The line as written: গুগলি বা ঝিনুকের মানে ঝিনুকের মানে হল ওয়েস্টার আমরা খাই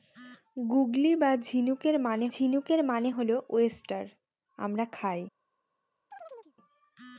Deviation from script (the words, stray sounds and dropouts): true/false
true